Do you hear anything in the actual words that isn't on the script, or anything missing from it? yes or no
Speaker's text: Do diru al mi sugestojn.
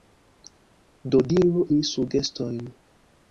yes